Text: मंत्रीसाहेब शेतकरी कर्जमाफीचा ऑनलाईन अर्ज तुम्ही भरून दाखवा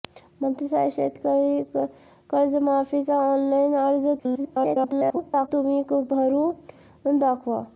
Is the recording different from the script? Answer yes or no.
yes